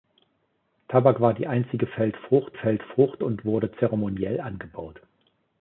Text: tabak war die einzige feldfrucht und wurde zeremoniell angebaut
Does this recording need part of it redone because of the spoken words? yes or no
yes